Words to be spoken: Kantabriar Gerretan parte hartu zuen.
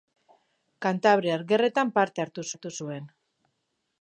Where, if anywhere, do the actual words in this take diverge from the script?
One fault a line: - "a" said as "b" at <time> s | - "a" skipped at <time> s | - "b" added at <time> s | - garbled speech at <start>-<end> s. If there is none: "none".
- "hartu" added at 2.5 s